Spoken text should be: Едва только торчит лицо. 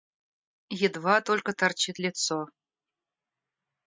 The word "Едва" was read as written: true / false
true